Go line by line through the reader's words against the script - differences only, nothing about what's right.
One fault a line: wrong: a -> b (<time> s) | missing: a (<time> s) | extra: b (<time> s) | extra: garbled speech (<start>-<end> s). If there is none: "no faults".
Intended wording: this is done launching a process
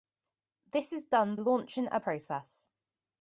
no faults